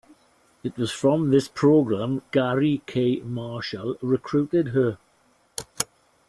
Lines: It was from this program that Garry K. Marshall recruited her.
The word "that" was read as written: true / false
false